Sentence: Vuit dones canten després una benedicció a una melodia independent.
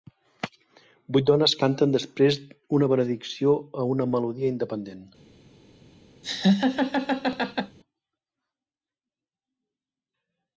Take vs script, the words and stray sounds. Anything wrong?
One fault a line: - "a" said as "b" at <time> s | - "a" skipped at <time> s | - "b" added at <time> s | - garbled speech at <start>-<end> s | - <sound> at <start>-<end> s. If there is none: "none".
- laugh at 6.2-7.8 s